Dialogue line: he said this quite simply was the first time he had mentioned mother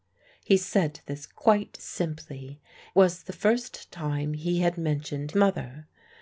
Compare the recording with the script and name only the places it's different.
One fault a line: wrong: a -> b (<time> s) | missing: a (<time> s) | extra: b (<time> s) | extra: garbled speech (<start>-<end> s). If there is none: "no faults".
no faults